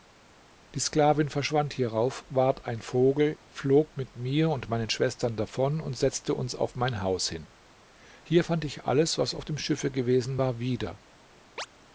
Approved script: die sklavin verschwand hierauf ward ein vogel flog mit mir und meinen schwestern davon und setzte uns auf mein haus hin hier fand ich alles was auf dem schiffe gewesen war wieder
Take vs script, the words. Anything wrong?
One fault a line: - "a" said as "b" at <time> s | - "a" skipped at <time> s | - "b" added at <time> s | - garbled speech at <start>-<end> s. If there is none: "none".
none